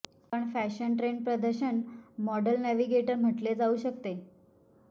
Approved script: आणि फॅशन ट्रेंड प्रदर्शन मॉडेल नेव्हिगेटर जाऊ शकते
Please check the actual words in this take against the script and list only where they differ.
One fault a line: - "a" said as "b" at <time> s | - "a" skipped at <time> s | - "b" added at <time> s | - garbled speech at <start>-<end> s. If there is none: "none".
- "आणि" said as "पण" at 0.3 s
- "म्हटले" added at 3.1 s